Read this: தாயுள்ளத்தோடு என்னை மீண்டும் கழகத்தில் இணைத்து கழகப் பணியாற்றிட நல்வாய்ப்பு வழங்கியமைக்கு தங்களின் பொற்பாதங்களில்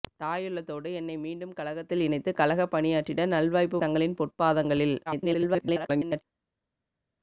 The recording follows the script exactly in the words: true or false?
false